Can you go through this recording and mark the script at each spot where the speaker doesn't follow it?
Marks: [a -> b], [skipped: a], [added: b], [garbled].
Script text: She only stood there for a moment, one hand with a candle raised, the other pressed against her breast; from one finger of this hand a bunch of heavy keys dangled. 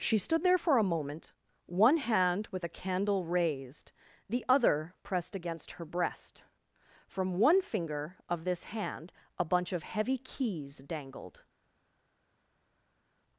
She [skipped: only] stood there for a moment, one hand with a candle raised, the other pressed against her breast; from one finger of this hand a bunch of heavy keys dangled.